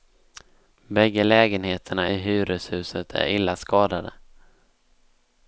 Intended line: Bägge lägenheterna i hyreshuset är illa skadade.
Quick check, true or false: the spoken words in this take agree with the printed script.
true